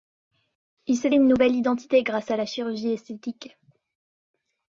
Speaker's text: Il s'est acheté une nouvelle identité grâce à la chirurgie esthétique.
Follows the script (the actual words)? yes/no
no